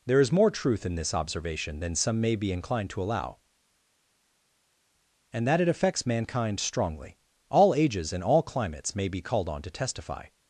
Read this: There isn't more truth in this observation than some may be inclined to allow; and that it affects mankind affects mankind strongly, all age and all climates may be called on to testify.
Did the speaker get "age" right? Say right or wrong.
wrong